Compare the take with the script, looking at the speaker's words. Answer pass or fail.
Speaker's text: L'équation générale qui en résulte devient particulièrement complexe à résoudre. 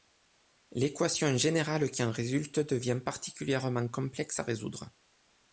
pass